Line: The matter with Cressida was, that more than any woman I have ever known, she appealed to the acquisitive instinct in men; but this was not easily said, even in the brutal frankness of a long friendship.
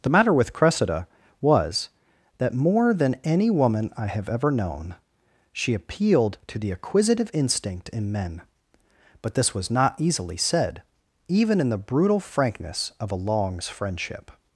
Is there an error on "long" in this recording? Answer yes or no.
yes